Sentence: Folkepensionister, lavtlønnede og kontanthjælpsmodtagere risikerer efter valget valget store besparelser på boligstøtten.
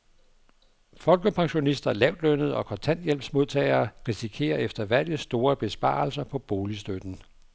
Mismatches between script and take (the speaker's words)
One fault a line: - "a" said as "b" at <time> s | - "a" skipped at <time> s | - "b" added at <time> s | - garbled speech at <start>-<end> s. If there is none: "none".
- "valget" skipped at 5.2 s